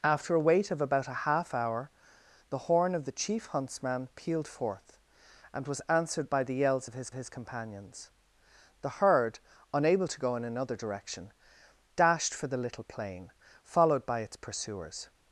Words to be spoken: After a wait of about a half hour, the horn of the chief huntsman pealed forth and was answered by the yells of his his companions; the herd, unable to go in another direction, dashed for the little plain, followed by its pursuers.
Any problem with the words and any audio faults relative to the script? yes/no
no